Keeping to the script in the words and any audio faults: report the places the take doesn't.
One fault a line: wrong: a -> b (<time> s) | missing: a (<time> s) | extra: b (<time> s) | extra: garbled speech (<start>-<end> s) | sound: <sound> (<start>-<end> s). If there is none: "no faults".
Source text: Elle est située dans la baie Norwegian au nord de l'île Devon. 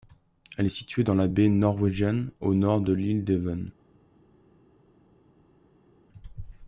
no faults